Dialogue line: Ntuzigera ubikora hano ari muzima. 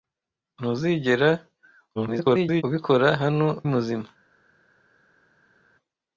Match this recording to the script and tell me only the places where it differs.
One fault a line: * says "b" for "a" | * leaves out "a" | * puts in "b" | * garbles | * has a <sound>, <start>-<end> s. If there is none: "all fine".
* garbles
* leaves out "ari"